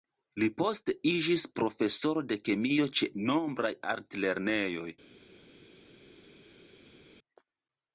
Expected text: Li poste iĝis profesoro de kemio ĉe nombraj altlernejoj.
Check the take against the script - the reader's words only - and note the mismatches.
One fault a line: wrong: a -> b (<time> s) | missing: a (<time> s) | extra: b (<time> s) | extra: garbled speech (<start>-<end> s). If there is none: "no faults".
no faults